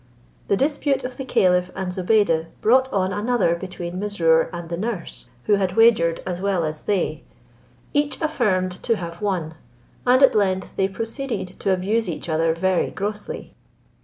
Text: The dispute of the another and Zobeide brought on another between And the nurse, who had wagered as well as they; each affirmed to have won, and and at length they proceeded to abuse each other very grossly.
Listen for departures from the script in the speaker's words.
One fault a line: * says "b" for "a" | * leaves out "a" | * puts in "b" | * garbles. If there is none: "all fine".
* says "caliph" for "another"
* puts in "Mesrour"
* leaves out "and"